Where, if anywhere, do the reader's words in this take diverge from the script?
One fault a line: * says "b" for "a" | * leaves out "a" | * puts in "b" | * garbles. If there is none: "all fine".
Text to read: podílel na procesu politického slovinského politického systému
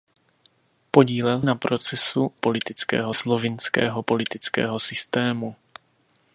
all fine